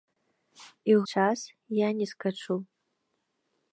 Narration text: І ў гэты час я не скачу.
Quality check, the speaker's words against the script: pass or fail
fail